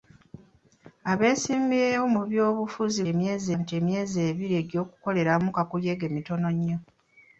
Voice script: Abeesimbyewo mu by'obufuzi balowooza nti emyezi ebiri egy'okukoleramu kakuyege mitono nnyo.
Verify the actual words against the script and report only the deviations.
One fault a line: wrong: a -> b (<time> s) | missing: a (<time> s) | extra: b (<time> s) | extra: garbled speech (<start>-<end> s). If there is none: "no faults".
wrong: balowooza -> emyezi (3.1 s)